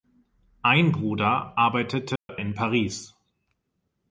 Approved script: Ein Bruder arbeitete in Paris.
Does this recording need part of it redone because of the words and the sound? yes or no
yes